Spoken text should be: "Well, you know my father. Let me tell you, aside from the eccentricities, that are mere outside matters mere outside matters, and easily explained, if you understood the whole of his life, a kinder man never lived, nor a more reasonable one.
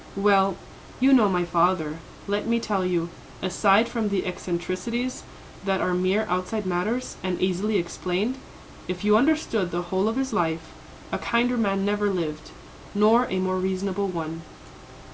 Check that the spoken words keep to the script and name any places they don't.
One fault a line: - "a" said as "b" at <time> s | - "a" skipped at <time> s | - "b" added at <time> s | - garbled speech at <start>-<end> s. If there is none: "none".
- "mere outside matters" skipped at 7.2 s